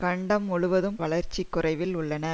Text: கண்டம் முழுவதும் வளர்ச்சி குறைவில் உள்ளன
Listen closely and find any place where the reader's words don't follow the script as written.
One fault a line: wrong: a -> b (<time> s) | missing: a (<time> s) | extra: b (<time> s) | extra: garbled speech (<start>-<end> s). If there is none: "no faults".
no faults